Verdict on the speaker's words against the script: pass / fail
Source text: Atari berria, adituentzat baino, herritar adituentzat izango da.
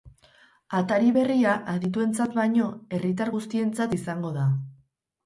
fail